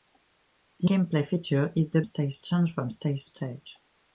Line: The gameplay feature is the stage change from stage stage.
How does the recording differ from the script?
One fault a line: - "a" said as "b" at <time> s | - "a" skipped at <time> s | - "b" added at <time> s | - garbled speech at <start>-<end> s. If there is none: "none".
none